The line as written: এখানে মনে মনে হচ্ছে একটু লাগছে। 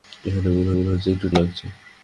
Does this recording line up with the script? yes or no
yes